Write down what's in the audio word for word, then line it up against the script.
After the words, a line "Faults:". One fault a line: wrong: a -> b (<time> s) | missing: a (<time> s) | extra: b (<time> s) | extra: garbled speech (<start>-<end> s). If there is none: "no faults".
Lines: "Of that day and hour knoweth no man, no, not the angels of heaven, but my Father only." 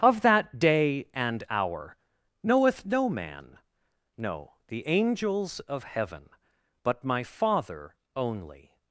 "Of that day and hour knoweth no man, no, the angels of heaven, but my Father only."
Faults:
missing: not (4.5 s)